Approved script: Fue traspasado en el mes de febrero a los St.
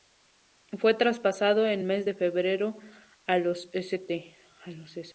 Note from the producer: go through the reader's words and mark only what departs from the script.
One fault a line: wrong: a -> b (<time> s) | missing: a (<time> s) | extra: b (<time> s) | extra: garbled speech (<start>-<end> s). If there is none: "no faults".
missing: el (1.8 s)